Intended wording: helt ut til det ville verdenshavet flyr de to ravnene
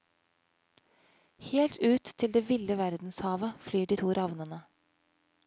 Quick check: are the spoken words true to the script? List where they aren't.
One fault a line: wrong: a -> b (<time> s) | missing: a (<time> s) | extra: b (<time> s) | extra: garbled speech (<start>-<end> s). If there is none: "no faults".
no faults